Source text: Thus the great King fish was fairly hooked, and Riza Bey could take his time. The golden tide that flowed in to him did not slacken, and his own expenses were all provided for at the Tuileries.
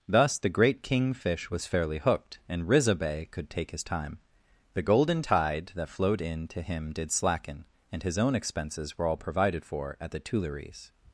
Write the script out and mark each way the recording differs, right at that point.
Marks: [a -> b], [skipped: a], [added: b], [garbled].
Thus the great King fish was fairly hooked, and Riza Bey could take his time. The golden tide that flowed in to him did [skipped: not] slacken, and his own expenses were all provided for at the Tuileries.